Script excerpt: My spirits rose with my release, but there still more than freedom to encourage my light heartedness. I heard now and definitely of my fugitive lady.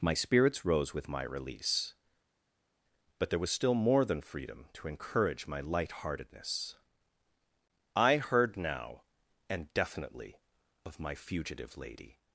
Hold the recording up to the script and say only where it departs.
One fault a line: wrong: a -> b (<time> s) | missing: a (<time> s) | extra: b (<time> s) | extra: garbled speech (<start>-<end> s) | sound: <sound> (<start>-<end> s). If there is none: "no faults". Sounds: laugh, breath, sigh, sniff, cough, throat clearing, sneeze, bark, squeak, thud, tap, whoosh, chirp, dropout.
extra: was (3.4 s)